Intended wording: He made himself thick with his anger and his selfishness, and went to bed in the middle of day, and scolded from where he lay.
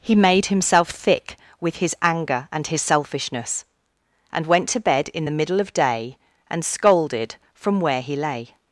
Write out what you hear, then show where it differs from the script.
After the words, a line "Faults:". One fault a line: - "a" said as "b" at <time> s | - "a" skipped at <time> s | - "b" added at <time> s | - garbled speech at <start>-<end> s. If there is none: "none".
He made himself thick with his anger and his selfishness, and went to bed in the middle of day, and scolded from where he lay.
Faults:
none